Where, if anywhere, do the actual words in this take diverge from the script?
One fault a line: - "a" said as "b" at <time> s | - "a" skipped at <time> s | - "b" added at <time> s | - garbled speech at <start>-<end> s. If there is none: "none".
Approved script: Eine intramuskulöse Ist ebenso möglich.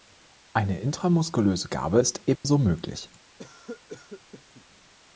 - "Gabe" added at 1.7 s